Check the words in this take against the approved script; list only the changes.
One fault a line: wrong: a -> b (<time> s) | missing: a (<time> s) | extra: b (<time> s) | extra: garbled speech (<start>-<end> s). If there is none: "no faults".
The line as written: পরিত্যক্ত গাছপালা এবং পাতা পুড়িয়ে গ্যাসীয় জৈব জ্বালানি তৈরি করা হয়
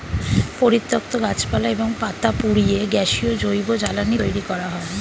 no faults